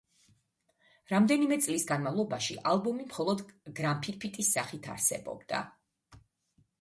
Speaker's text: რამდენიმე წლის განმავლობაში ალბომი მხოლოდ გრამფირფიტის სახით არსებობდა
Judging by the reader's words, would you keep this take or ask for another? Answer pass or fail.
pass